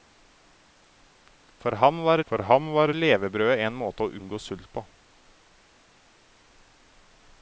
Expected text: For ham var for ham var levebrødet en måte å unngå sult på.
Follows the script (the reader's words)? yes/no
yes